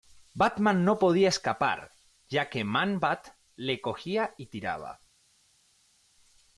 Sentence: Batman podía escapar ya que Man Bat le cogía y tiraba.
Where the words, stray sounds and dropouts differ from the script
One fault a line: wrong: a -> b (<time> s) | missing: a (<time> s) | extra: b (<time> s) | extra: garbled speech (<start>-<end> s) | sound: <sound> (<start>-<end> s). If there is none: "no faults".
extra: no (0.8 s)